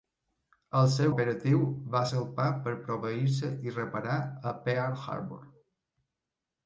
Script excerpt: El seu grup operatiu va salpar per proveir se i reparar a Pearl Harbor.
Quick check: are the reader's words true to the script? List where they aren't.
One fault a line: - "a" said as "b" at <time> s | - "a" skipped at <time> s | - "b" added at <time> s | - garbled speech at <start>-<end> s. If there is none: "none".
- "grup" skipped at 1.1 s